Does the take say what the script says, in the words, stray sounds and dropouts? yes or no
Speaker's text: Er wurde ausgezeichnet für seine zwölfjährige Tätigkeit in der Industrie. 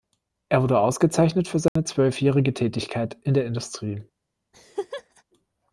no